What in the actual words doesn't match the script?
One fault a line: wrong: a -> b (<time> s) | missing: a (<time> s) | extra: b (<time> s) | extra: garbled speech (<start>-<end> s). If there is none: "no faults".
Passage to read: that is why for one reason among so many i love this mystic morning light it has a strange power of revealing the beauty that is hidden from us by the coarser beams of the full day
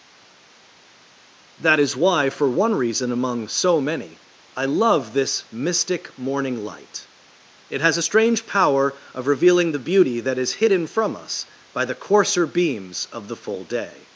no faults